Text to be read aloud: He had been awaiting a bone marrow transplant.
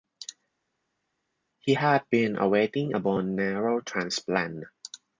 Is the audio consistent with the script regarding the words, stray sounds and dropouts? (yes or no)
yes